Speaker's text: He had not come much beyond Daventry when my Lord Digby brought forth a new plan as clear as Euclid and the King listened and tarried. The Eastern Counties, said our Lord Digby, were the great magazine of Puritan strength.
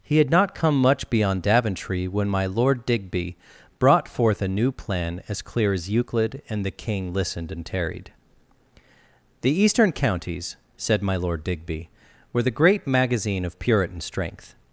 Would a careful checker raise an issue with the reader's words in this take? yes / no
yes